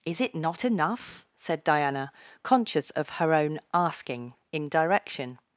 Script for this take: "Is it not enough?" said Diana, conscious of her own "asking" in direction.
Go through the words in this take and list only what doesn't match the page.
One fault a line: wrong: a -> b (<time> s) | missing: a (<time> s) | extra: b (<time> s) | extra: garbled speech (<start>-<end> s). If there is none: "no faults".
no faults